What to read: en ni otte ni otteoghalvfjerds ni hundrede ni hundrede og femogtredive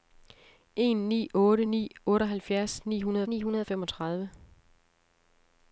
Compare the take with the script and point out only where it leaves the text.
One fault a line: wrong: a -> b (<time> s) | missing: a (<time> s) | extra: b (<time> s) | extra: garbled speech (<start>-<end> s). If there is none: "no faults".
no faults